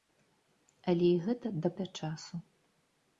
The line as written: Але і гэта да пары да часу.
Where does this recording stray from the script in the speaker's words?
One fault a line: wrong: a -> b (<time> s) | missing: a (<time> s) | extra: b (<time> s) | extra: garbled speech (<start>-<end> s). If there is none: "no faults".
missing: пары (1.7 s)